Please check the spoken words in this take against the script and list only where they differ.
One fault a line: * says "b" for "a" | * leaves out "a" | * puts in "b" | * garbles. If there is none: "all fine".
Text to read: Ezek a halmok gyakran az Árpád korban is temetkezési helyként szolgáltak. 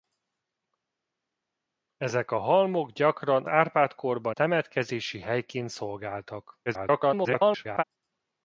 * leaves out "az"
* leaves out "is"
* garbles